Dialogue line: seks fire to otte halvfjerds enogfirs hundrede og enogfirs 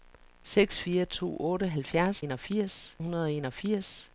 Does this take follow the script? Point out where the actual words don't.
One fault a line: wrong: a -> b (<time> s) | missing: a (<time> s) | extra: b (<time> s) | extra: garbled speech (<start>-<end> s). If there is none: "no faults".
no faults